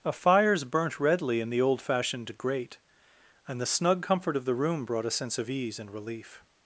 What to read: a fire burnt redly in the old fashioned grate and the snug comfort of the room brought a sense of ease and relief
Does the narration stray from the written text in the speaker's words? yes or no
yes